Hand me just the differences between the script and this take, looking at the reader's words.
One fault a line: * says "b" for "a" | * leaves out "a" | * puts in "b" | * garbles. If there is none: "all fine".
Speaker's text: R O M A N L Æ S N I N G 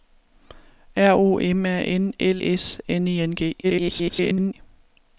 * leaves out "Æ"
* garbles